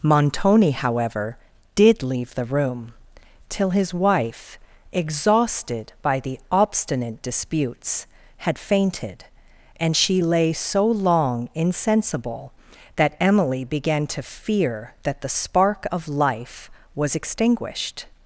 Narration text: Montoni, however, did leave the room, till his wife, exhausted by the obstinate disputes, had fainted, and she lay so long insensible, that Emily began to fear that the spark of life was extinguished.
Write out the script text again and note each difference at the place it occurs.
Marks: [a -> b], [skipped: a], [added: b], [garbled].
Montoni, however, did leave the room, till his wife, exhausted by the obstinate disputes, had fainted, and she lay so long insensible, that Emily began to fear that the spark of life was extinguished.